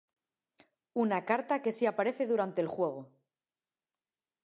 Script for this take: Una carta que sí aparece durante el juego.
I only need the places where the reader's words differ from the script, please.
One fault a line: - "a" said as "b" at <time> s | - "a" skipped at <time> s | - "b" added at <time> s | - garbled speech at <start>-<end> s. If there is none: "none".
none